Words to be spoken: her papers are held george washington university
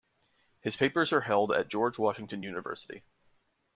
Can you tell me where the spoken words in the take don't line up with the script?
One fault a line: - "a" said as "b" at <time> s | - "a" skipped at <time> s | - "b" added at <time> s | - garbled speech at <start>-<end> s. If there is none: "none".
- "her" said as "his" at 0.6 s
- "at" added at 1.5 s